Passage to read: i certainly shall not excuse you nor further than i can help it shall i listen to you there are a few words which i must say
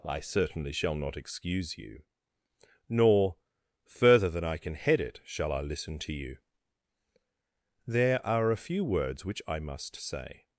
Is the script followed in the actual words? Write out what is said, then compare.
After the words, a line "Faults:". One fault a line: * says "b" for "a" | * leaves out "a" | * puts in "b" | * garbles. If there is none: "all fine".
i certainly shall not excuse you nor further than i can head it shall i listen to you there are a few words which i must say
Faults:
* says "head" for "help"